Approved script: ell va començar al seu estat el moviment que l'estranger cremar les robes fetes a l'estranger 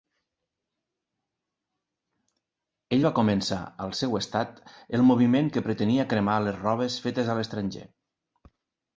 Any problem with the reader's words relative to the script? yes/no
yes